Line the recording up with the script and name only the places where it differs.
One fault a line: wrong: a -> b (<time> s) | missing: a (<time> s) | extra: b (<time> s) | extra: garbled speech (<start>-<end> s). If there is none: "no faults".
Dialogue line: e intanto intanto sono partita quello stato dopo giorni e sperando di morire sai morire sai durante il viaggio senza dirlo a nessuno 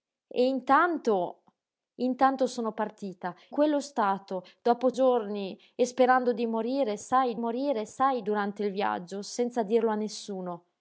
no faults